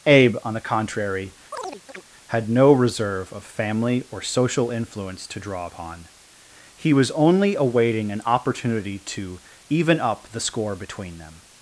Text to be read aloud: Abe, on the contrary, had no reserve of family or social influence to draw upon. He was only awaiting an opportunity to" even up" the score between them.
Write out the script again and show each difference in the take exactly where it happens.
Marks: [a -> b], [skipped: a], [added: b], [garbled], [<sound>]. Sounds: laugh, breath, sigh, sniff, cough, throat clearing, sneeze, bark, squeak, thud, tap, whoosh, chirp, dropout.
Abe, on the contrary, [chirp] had no reserve of family or social influence to draw upon. He was only awaiting an opportunity to" even up" the score between them.